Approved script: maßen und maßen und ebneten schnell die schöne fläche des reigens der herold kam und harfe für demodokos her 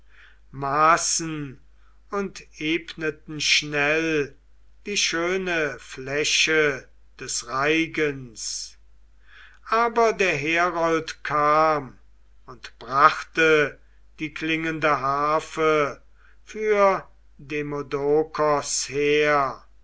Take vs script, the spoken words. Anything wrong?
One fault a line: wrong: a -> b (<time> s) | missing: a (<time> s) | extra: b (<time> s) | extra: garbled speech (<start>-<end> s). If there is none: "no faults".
missing: maßen und (2.4 s)
extra: aber (9.7 s)
extra: brachte die klingende (12.8 s)